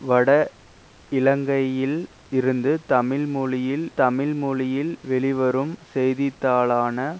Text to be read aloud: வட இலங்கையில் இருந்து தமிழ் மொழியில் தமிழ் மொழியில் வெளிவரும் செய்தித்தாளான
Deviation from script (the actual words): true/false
false